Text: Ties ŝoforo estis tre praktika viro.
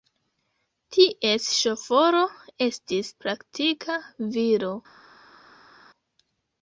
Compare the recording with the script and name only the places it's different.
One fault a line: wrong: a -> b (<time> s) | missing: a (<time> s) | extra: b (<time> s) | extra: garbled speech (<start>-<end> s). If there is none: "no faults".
missing: tre (3.1 s)